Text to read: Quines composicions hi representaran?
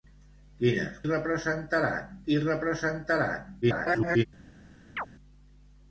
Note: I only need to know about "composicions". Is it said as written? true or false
false